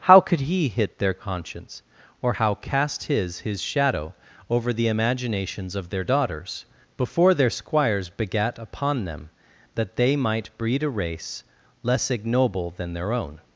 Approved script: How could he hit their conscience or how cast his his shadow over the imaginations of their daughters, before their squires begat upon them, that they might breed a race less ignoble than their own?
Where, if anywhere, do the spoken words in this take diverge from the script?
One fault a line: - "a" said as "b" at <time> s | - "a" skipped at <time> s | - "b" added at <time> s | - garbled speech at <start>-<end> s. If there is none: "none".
none